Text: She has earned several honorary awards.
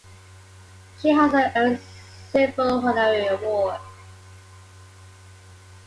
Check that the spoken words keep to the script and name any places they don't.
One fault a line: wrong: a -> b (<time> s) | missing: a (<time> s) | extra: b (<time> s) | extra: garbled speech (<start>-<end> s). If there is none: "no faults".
no faults